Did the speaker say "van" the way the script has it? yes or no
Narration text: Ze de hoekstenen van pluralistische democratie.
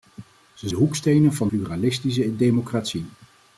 yes